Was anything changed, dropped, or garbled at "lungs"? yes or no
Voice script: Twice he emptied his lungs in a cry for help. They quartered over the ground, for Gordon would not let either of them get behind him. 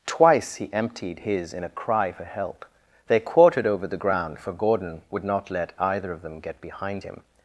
yes